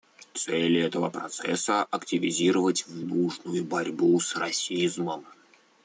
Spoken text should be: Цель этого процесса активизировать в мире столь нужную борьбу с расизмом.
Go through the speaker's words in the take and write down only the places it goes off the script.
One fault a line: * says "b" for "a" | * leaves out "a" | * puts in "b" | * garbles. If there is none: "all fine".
* leaves out "мире столь"